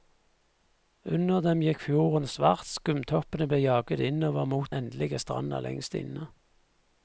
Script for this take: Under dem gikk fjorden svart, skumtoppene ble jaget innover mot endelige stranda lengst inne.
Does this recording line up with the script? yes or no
yes